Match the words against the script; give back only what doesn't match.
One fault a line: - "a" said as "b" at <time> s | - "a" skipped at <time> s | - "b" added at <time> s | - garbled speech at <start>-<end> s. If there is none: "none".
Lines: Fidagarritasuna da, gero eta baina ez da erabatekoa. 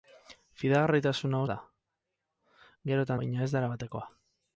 none